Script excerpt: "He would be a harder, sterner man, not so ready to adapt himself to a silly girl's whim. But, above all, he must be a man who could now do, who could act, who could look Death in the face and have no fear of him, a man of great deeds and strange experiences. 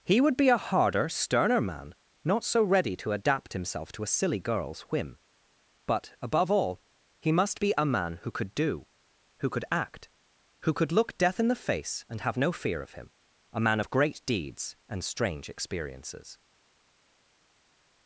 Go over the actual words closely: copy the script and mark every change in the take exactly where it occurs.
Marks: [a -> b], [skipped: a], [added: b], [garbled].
"He would be a harder, sterner man, not so ready to adapt himself to a silly girl's whim. But, above all, he must be a man who could [skipped: now] do, who could act, who could look Death in the face and have no fear of him, a man of great deeds and strange experiences.